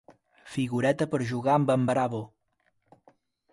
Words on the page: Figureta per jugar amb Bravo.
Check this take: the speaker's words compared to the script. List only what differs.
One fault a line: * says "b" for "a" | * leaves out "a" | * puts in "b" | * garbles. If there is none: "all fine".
* puts in "en"